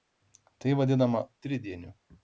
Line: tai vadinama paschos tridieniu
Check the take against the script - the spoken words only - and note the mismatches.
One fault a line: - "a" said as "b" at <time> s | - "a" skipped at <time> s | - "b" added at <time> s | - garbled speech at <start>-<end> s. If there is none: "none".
- "paschos" skipped at 1.2 s